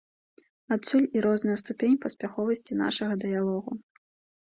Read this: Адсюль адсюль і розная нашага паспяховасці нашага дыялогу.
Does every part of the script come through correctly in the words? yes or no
no